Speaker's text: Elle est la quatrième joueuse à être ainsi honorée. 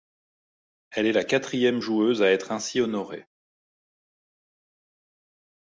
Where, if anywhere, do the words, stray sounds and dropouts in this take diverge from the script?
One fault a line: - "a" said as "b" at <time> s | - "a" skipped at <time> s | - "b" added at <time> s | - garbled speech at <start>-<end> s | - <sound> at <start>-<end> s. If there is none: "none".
none